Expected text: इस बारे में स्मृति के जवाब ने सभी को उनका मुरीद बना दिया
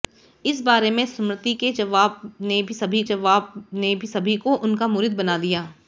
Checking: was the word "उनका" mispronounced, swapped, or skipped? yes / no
no